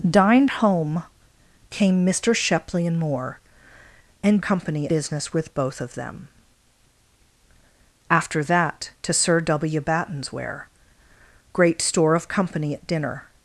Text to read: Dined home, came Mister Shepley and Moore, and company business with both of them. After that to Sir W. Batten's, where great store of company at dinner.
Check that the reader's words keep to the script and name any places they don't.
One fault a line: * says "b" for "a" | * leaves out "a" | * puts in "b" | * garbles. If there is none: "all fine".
all fine